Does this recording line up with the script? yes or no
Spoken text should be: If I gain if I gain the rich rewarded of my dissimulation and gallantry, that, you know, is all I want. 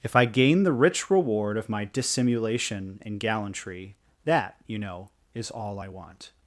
no